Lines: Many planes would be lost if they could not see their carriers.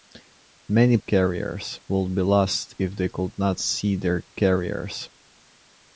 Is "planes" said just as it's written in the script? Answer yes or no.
no